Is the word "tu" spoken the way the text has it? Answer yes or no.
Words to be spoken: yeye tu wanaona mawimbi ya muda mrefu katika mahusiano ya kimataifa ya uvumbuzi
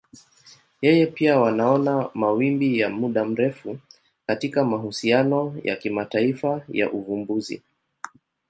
no